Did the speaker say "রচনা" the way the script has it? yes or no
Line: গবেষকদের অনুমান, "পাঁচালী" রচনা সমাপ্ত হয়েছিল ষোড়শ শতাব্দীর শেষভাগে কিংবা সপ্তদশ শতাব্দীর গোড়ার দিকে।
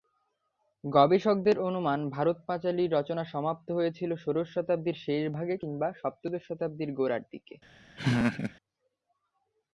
yes